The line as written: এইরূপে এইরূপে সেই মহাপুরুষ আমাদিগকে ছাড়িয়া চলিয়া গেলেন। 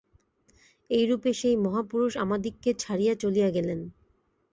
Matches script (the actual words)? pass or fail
fail